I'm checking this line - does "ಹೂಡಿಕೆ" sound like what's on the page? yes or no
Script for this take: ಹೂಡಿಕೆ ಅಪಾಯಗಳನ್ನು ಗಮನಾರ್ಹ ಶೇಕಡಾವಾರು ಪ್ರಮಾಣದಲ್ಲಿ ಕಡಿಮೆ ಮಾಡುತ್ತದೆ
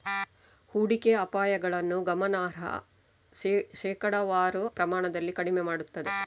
yes